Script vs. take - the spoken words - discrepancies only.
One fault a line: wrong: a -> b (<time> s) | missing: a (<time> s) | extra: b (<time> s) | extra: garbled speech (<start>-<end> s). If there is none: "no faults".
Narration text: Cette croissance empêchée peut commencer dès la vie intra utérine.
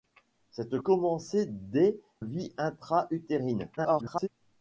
missing: croissance empêchée peut (0.8 s)
missing: la (2.0 s)
extra: garbled speech (3.8-4.3 s)